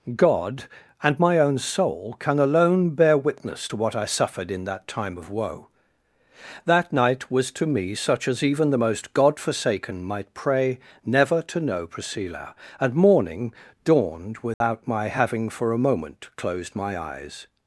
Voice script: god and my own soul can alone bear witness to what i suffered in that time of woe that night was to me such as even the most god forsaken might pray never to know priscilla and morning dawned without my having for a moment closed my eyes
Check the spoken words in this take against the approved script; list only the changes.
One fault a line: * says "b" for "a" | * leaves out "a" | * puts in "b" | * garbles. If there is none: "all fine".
all fine